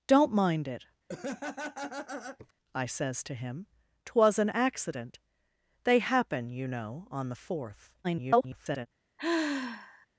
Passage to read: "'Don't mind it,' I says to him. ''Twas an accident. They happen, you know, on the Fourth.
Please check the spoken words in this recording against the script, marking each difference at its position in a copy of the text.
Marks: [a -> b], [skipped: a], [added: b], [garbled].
"'Don't mind it,' I says to him. ''Twas an accident. They happen, you know, on the Fourth. [garbled]